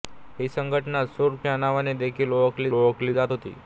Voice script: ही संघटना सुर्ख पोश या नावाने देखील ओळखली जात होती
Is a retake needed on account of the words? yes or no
yes